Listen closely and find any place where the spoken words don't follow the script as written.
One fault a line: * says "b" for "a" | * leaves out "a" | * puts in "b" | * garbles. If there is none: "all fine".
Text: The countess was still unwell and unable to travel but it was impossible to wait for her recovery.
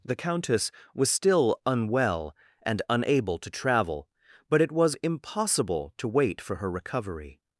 all fine